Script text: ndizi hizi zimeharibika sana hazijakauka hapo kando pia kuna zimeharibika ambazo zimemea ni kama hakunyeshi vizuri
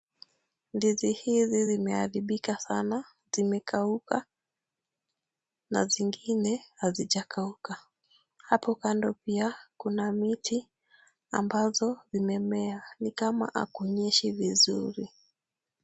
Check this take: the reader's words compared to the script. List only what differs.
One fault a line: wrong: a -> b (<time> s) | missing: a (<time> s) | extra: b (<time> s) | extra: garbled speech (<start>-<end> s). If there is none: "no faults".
extra: zimekauka na zingine (3.3 s)
wrong: zimeharibika -> miti (10.1 s)